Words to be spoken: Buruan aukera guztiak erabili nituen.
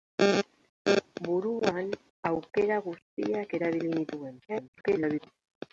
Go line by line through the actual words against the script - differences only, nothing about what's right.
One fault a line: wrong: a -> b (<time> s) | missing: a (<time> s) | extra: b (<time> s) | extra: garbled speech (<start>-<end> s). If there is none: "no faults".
extra: garbled speech (4.5-5.3 s)